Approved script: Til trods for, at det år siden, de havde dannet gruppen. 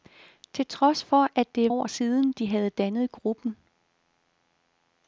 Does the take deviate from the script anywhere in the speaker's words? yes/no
no